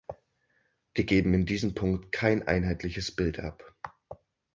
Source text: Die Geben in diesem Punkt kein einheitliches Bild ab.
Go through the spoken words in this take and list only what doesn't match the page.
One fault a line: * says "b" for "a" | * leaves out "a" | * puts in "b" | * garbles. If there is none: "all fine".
all fine